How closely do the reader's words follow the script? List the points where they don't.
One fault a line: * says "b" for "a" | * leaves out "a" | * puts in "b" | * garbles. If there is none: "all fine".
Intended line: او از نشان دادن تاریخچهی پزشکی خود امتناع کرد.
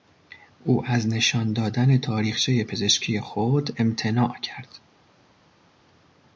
all fine